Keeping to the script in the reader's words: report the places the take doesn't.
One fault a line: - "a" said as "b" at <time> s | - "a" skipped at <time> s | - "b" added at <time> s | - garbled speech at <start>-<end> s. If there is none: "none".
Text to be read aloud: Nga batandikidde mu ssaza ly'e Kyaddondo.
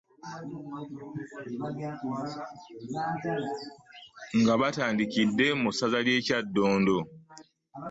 none